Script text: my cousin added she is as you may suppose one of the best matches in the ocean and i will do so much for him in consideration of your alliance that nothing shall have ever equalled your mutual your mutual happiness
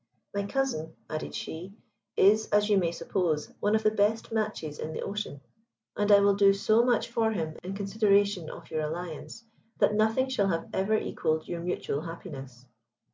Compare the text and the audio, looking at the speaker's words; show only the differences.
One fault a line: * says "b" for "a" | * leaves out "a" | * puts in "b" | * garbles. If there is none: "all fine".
* leaves out "your mutual"